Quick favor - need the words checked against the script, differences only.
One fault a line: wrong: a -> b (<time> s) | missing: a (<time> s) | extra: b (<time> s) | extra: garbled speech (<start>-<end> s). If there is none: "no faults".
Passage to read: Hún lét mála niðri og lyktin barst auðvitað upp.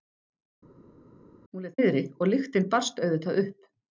missing: mála (1.8 s)